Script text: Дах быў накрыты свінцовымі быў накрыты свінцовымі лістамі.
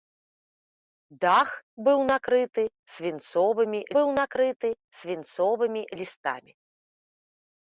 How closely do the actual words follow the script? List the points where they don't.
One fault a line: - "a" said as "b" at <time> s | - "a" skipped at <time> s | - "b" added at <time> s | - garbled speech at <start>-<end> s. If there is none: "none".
none